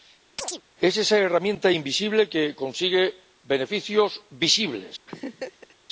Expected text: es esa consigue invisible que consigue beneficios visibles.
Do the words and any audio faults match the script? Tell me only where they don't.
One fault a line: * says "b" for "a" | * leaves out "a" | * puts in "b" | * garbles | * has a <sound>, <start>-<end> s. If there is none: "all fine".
* has a chirp, 0.4-0.6 s
* says "herramienta" for "consigue"
* has a laugh, 5.1-5.7 s